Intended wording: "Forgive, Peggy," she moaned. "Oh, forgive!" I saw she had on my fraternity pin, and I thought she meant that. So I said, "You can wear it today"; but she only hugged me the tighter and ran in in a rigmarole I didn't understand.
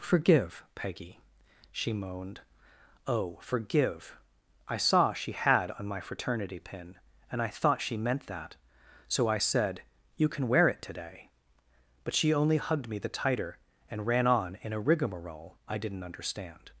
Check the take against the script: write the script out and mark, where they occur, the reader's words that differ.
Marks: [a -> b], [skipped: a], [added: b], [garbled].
"Forgive, Peggy," she moaned. "Oh, forgive!" I saw she had on my fraternity pin, and I thought she meant that. So I said, "You can wear it today"; but she only hugged me the tighter and ran [in -> on] in a rigmarole I didn't understand.